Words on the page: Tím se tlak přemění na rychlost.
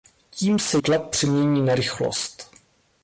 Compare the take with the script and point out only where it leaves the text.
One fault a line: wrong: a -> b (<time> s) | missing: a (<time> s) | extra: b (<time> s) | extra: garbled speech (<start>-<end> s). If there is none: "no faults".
no faults